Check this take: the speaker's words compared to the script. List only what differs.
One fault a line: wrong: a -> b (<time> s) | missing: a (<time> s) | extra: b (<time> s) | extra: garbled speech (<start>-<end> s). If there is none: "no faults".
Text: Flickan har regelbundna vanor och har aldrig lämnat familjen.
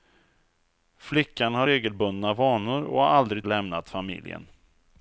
no faults